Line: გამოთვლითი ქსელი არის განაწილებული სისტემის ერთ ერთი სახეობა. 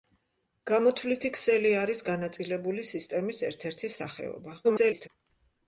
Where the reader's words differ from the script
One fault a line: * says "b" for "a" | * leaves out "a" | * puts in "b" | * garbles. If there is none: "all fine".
* garbles